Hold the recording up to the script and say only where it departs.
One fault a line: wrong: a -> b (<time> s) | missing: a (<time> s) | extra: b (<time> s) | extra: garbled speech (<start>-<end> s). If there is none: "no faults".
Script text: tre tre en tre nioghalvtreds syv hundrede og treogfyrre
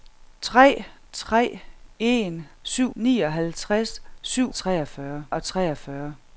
wrong: tre -> syv (2.6 s)
wrong: hundrede -> treogfyrre (4.5 s)